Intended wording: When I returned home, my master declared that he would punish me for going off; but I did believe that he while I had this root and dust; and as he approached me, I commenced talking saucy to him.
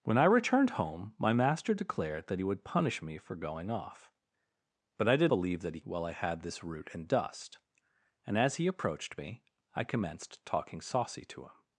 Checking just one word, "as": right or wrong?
right